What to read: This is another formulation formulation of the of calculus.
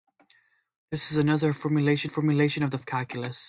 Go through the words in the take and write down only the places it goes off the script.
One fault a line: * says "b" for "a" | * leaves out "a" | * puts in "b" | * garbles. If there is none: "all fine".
all fine